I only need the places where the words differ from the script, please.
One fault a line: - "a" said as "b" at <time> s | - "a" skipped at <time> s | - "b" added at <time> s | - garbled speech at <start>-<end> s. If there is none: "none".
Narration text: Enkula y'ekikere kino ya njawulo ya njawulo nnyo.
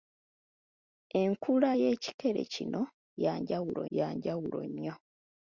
none